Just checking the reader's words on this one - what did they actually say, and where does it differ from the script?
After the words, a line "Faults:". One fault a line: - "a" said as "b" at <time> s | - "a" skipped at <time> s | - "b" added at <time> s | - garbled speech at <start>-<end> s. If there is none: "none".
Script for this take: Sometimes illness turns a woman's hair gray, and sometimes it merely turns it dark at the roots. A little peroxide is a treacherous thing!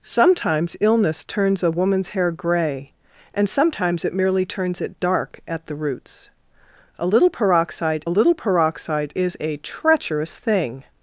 Sometimes illness turns a woman's hair gray, and sometimes it merely turns it dark at the roots. A little peroxide little peroxide is a treacherous thing!
Faults:
- "little peroxide" added at 8.1 s